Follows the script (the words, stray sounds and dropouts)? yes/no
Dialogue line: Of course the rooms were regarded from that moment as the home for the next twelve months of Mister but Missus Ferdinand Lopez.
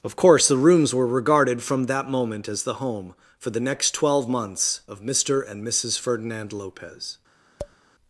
no